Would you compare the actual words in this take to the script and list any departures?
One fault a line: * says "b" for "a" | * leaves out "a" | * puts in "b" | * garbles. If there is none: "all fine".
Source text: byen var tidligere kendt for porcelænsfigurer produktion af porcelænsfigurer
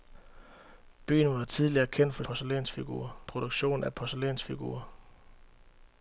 all fine